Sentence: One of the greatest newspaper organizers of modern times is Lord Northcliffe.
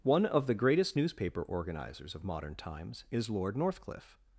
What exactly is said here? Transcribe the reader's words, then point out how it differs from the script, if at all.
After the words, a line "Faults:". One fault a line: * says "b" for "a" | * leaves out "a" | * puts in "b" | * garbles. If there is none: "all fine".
One of the greatest newspaper organizers of modern times is Lord Northcliffe.
Faults:
all fine